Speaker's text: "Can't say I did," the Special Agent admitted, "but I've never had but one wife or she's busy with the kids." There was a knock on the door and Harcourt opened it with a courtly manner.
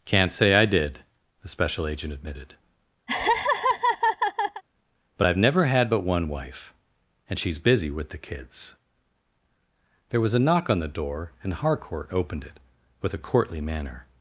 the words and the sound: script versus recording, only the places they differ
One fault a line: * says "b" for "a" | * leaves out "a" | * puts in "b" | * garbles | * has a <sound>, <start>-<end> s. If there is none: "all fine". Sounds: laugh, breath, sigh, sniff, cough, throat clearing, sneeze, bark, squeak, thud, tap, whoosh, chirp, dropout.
* has a laugh, 3.1-4.6 s
* says "and" for "or"